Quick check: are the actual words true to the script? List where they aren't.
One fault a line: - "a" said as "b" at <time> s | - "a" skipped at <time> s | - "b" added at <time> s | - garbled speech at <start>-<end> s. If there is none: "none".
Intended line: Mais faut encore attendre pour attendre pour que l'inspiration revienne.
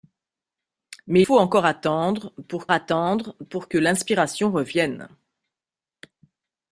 none